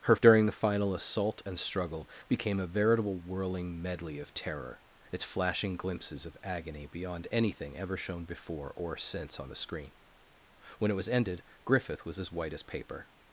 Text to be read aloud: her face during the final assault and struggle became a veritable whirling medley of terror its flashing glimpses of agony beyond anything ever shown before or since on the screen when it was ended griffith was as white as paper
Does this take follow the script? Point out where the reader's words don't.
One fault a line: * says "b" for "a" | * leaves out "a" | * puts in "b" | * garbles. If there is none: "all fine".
* leaves out "face"